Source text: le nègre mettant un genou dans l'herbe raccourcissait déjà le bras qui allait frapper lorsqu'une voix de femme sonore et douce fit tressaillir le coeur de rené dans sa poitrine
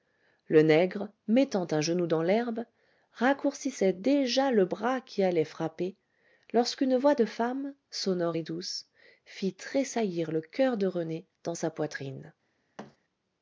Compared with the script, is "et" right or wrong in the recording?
right